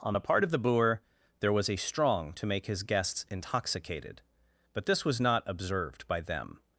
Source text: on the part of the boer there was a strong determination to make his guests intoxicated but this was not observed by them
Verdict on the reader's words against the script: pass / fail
fail